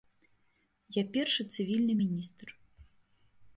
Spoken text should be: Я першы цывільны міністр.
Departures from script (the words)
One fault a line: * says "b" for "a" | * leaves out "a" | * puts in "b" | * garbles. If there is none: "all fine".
all fine